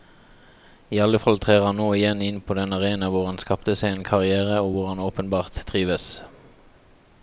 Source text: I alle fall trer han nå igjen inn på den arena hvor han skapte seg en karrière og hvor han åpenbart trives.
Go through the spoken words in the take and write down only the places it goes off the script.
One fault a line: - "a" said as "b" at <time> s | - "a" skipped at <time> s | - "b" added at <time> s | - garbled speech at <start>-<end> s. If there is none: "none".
none